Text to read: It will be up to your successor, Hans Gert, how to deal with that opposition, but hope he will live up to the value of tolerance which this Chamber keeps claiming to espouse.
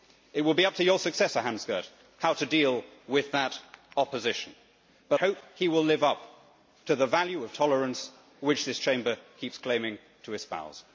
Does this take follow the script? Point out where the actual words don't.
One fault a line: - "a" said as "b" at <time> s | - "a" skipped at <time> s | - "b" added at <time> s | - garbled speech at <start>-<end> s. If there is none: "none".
none